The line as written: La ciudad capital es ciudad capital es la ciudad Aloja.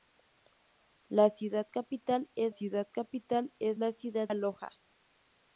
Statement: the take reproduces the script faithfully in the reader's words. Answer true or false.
true